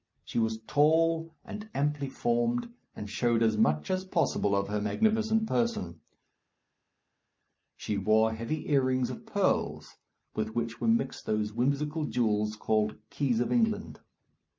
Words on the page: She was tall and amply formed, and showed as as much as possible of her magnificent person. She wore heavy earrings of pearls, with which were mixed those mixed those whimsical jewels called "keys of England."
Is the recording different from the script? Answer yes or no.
yes